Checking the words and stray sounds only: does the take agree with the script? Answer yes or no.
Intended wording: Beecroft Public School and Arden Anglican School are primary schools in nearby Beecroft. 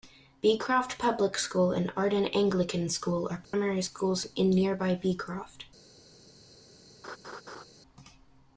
no